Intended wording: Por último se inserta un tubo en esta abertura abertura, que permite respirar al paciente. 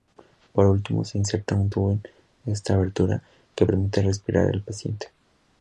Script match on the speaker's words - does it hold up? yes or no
no